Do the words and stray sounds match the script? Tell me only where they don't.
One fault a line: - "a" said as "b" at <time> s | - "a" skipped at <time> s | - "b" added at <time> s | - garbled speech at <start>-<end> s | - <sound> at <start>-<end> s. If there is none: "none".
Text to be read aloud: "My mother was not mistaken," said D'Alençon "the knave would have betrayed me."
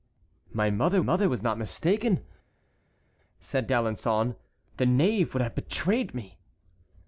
- "mother" added at 1.0 s